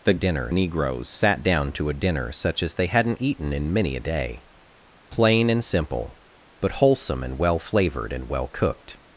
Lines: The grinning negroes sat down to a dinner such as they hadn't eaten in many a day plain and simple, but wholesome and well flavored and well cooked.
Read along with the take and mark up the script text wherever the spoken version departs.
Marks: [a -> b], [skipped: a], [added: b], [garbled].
The [grinning -> dinner] negroes sat down to a dinner such as they hadn't eaten in many a day plain and simple, but wholesome and well flavored and well cooked.